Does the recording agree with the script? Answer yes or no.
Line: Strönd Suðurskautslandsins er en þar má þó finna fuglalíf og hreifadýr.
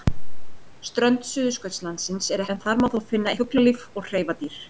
yes